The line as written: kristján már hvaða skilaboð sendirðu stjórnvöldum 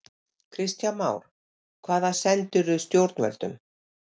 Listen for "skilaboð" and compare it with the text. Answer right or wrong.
wrong